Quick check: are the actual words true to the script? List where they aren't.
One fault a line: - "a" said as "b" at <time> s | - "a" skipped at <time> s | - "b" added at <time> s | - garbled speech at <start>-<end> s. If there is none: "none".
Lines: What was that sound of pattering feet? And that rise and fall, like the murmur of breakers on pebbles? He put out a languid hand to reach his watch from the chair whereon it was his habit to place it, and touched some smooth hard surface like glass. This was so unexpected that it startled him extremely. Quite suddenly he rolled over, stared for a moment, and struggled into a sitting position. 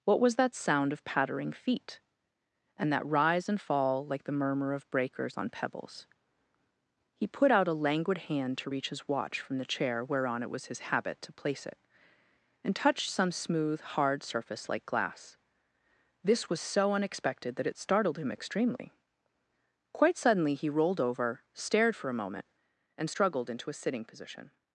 none